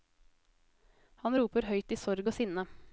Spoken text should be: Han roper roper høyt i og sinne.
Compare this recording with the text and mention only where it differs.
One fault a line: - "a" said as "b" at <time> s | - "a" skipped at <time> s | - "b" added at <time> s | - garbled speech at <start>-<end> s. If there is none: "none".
- "roper" skipped at 1.7 s
- "sorg" added at 2.0 s